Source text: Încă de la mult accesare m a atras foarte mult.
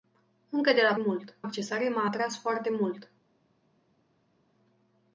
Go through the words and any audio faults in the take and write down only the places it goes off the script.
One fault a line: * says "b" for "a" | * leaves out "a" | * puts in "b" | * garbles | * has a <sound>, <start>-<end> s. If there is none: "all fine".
all fine